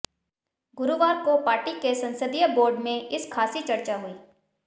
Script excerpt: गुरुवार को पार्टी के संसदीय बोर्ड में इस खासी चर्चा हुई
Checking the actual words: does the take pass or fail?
pass